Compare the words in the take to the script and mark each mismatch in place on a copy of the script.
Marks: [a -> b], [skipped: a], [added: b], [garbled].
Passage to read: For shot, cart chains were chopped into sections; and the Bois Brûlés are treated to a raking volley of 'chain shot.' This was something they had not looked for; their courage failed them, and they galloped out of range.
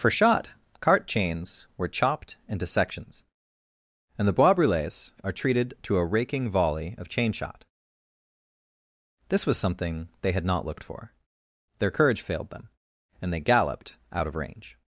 For shot, cart chains were chopped into sections; and the Bois Brûlés are treated to a raking volley of 'chain shot.' This was something they had not looked for; their courage failed them, and they galloped out of range.